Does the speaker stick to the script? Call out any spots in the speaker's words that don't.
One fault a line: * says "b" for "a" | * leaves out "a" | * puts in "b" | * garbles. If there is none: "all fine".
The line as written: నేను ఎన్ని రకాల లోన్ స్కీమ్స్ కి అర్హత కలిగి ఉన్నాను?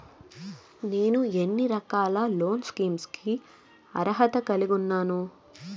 all fine